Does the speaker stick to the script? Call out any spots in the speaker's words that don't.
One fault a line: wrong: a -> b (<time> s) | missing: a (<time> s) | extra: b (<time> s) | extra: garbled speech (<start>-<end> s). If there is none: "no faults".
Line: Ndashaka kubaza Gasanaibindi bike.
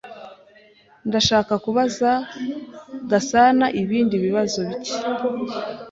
extra: bibazo (4.2 s)